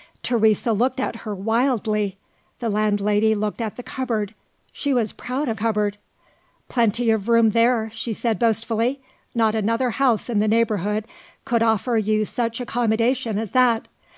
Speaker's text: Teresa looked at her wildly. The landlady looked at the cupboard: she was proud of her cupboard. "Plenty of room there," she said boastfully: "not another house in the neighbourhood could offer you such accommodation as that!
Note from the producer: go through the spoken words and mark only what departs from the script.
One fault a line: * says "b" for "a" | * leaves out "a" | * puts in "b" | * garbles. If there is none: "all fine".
* leaves out "her"